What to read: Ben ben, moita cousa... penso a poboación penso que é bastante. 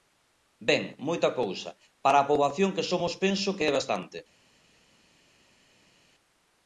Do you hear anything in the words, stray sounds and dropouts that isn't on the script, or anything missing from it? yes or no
yes